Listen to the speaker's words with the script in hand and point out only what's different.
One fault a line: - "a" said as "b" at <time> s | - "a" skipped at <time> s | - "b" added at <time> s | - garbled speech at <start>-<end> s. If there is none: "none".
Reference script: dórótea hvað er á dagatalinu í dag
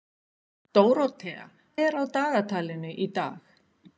- "hvað" skipped at 1.4 s